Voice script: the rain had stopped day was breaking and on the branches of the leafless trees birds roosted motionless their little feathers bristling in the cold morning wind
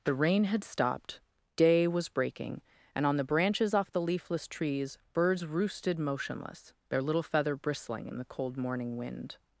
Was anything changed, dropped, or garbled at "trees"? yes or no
no